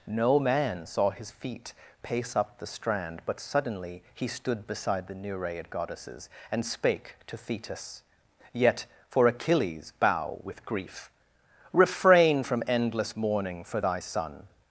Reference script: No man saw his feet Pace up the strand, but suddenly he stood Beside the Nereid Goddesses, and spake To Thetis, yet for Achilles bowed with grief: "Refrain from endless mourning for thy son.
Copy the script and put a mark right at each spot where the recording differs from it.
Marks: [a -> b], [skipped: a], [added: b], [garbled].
No man saw his feet Pace up the strand, but suddenly he stood Beside the Nereid Goddesses, and spake To Thetis, yet for Achilles [bowed -> bow] with grief: "Refrain from endless mourning for thy son.